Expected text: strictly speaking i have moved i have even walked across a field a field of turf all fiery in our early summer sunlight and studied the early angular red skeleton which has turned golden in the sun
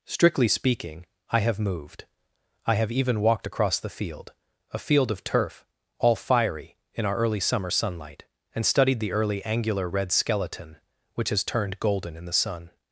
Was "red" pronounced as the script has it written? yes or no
yes